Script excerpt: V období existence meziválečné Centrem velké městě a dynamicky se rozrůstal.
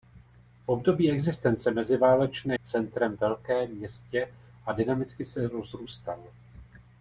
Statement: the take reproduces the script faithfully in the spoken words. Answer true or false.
true